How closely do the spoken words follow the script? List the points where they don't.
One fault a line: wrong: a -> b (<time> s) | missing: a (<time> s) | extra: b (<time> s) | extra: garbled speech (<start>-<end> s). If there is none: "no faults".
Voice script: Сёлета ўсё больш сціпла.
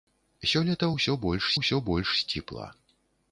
extra: ўсё больш (1.6 s)